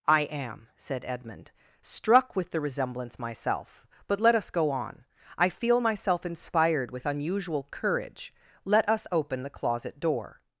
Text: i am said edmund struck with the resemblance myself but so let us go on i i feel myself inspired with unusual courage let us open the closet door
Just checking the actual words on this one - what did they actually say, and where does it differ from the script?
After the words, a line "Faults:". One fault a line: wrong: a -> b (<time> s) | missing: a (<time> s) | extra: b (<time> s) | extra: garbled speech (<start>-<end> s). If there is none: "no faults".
i am said edmund struck with the resemblance myself but let us go on i feel myself inspired with unusual courage let us open the closet door
Faults:
missing: so (4.2 s)
missing: i (5.5 s)